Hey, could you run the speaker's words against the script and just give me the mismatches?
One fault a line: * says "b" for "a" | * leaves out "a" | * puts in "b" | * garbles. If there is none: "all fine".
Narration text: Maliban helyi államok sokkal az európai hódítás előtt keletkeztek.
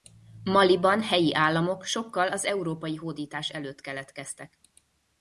all fine